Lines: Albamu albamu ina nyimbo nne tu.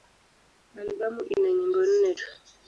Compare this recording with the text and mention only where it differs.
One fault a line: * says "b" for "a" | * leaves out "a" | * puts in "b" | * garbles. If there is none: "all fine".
* leaves out "albamu"